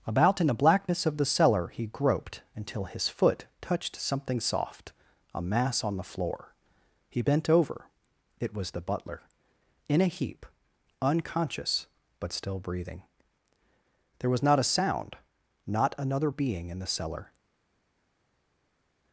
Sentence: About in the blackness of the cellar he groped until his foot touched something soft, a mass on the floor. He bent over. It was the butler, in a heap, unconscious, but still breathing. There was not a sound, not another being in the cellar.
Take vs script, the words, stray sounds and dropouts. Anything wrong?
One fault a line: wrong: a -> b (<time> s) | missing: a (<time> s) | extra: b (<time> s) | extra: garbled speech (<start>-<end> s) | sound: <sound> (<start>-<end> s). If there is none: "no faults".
no faults